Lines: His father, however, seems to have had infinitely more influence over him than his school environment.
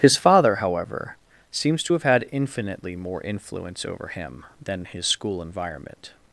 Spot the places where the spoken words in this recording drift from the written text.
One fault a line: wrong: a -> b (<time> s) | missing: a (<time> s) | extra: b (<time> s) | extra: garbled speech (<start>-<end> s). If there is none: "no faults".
no faults